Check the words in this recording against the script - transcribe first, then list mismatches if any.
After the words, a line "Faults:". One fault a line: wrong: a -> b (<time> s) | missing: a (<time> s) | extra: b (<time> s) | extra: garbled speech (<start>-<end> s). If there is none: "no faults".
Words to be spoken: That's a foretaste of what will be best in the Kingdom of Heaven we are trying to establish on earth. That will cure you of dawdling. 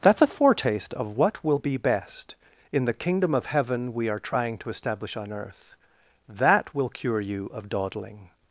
That's a foretaste of what will be best in the Kingdom of Heaven we are trying to establish on earth. That will cure you of dawdling.
Faults:
no faults